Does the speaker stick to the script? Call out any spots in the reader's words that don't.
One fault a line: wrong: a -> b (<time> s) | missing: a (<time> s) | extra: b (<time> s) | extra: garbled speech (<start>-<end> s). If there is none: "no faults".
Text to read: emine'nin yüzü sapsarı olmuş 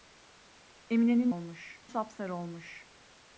wrong: yüzü -> olmuş (1.3 s)